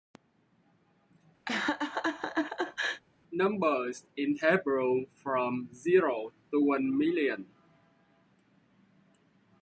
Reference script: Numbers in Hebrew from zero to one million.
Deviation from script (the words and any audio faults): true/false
true